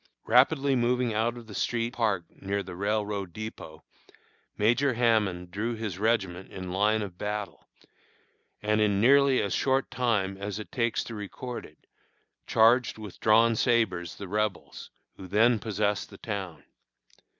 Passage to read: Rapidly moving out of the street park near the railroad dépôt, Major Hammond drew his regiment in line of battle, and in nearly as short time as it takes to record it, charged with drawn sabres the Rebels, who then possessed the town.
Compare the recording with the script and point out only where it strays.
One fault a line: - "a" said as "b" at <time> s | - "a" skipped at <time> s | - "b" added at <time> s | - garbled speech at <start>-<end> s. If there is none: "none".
none